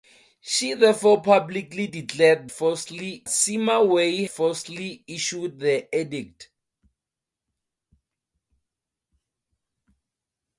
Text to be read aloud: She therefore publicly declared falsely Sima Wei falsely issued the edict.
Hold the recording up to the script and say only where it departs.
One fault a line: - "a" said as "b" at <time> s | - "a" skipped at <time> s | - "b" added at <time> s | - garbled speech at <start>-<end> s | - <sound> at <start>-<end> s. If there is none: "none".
none